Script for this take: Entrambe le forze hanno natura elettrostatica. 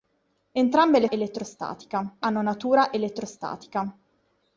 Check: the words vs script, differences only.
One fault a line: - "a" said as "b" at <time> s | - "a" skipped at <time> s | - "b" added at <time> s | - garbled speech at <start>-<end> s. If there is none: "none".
- "forze" said as "elettrostatica" at 1.1 s